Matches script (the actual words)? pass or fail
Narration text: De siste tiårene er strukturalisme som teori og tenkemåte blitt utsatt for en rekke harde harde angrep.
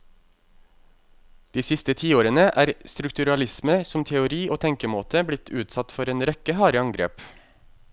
fail